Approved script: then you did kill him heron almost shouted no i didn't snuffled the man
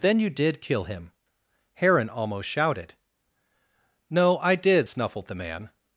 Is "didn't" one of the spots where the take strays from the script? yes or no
yes